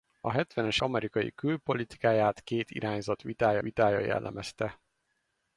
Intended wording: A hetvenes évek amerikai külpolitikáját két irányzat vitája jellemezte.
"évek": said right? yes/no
no